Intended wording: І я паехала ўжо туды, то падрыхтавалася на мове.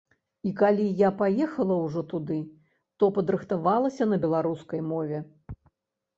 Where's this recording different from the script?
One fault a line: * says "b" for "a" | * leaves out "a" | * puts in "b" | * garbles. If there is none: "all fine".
* puts in "калі"
* puts in "беларускай"